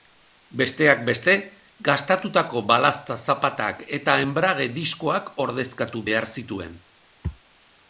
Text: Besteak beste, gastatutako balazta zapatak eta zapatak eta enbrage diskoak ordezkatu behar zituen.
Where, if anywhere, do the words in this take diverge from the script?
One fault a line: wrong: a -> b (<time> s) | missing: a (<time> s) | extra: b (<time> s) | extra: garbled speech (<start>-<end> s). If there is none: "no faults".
missing: zapatak eta (4.2 s)